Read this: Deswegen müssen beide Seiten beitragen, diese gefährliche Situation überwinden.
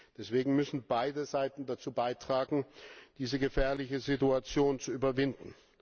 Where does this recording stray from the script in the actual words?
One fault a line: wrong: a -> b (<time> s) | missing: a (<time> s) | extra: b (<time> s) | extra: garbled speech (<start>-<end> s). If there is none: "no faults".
extra: dazu (1.7 s)
extra: zu (4.8 s)